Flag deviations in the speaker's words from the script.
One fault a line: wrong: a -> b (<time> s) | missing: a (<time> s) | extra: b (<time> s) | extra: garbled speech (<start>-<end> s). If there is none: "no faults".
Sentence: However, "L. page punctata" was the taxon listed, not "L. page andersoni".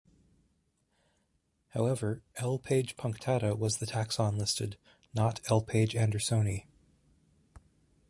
no faults